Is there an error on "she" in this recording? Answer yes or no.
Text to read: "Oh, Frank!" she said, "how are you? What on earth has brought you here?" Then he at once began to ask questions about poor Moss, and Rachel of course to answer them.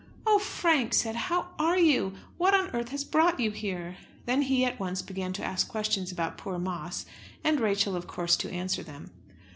yes